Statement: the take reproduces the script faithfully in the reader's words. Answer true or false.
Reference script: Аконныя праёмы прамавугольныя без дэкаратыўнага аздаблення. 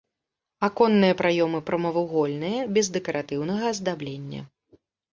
true